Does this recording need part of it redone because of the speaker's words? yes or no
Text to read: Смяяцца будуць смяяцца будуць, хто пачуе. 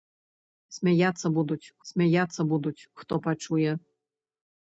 no